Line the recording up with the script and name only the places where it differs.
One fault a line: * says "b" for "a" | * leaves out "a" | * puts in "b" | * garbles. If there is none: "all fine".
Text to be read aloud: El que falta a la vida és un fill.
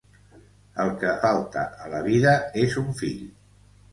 all fine